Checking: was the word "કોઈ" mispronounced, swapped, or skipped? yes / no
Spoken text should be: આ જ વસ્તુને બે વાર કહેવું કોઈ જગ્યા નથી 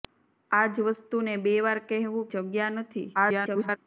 yes